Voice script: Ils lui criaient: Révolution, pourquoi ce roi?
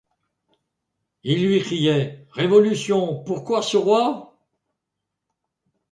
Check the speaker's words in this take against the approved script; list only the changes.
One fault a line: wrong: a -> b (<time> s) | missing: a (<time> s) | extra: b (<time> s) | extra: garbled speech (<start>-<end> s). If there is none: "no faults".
no faults